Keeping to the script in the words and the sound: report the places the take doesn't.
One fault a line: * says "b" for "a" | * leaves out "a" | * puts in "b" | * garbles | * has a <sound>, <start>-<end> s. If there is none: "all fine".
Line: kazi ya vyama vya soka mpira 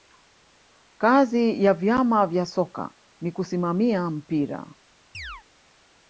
* puts in "ni kusimamia"
* has a chirp, 5.1-5.4 s